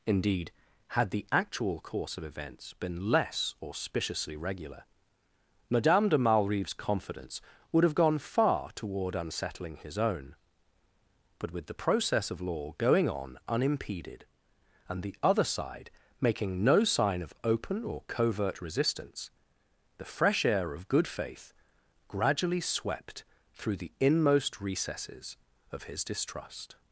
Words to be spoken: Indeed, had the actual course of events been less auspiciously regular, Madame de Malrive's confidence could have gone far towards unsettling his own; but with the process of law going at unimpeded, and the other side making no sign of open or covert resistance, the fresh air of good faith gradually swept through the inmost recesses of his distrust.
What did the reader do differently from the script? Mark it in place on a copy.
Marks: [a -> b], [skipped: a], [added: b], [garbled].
Indeed, had the actual course of events been less auspiciously regular, Madame de Malrive's confidence [could -> would] have gone far [towards -> toward] unsettling his own; but with the process of law going [at -> on] unimpeded, and the other side making no sign of open or covert resistance, the fresh air of good faith gradually swept through the inmost recesses of his distrust.